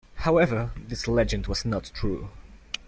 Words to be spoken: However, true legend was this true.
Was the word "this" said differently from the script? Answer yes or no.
yes